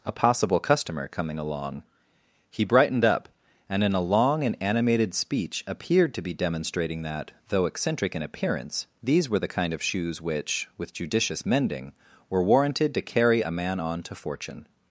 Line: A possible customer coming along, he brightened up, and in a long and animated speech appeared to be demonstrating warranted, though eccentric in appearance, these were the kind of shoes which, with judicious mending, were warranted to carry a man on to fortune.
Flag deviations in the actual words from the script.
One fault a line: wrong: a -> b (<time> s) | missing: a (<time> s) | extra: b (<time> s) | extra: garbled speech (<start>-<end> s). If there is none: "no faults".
wrong: warranted -> that (7.0 s)